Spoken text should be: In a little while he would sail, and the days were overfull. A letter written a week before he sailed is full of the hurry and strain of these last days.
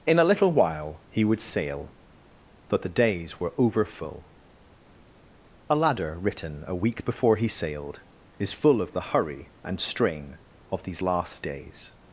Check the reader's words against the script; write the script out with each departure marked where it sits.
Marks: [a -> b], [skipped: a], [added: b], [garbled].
In a little while he would sail, [and -> but] the days were overfull. A [letter -> ladder] written a week before he sailed is full of the hurry and strain of these last days.